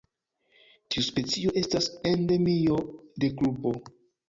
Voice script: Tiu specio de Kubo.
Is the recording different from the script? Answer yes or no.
yes